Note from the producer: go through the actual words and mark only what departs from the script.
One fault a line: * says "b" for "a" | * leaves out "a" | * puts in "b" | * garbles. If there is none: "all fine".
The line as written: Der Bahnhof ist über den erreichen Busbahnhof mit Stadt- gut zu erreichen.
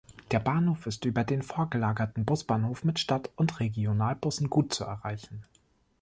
* says "vorgelagerten" for "erreichen"
* puts in "und Regionalbussen"